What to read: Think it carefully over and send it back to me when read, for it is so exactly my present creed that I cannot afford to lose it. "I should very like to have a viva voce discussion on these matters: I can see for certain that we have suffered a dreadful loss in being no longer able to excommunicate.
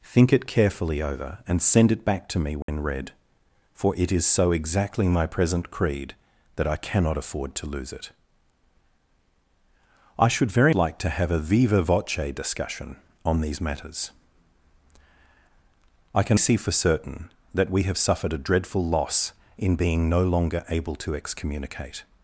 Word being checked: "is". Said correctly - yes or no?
yes